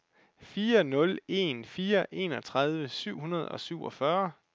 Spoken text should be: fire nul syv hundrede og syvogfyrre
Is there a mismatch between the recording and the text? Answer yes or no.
yes